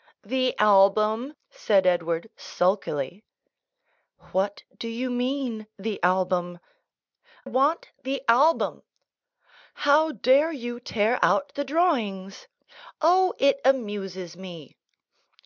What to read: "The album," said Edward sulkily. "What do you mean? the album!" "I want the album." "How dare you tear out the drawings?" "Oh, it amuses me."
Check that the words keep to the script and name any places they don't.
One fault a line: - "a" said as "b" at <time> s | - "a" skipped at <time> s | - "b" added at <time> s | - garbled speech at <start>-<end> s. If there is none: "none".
- "I" skipped at 6.6 s